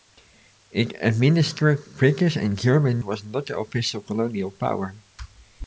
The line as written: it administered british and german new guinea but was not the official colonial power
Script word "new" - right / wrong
wrong